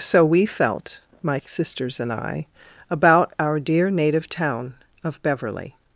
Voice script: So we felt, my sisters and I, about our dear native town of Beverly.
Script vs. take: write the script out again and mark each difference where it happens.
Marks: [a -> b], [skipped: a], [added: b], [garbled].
So we felt, my sisters and I, about our dear native town of Beverly.